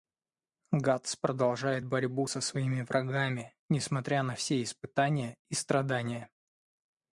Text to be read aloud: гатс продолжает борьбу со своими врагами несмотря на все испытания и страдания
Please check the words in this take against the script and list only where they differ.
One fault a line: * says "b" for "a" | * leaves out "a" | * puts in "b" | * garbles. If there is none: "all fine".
all fine